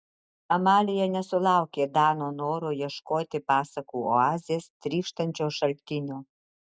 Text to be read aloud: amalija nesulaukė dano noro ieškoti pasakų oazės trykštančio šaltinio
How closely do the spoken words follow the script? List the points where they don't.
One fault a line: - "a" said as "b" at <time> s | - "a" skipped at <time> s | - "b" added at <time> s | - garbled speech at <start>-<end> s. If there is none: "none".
none